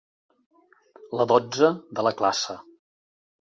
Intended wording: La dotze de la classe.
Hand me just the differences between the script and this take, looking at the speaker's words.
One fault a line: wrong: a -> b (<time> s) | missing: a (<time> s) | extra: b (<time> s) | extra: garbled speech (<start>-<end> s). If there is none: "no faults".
no faults